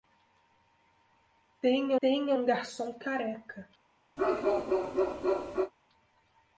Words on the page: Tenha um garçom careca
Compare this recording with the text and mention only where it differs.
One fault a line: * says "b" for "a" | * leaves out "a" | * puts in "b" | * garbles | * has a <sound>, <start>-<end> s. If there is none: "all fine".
* puts in "tenha"
* has a bark, 4.2-5.7 s